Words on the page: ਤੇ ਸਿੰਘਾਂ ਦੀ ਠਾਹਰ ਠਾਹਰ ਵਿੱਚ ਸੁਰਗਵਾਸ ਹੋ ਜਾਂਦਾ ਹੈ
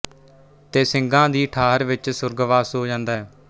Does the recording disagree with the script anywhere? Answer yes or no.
yes